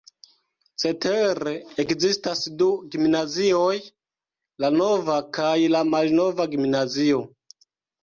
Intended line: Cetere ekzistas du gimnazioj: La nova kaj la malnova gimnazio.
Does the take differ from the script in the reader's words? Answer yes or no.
no